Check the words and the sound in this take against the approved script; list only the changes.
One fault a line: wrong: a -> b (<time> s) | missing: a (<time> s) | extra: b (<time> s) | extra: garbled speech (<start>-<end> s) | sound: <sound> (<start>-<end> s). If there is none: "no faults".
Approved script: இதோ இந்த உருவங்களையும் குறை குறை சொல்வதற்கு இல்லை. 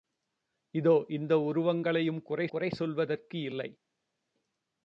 no faults